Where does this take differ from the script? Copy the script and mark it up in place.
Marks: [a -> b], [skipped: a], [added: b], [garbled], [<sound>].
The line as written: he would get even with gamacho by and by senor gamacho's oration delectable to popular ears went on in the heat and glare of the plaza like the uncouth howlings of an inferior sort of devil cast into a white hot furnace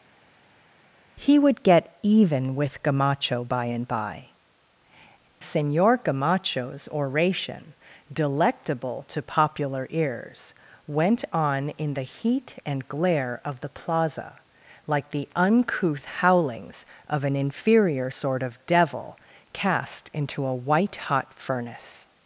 he would get even with gamacho by and by senor gamacho's oration delectable to popular ears went on in the heat and glare of the plaza like the uncouth howlings of an inferior sort of devil cast into a white hot furnace